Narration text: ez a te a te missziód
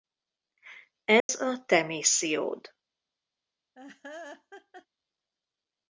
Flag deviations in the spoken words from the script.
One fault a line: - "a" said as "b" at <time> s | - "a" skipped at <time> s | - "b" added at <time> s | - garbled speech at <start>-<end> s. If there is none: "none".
- "a te" skipped at 1.8 s